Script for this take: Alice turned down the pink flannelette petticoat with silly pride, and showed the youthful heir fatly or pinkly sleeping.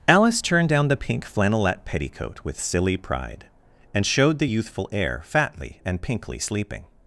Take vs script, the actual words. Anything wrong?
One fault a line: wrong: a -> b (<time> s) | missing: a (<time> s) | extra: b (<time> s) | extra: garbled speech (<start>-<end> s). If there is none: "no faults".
wrong: or -> and (5.8 s)